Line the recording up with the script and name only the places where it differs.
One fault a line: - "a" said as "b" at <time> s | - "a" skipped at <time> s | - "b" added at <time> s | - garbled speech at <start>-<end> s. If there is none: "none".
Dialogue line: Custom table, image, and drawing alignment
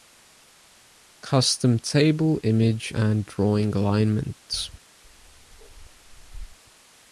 none